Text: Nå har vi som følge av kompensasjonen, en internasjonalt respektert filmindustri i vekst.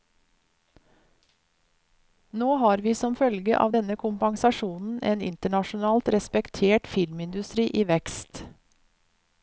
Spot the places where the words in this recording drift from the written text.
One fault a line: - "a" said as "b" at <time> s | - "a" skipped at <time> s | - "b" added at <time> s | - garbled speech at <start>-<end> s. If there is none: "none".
- "denne" added at 3.7 s